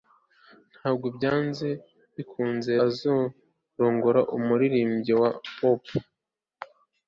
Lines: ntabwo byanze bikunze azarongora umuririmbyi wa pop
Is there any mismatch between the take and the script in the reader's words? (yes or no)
no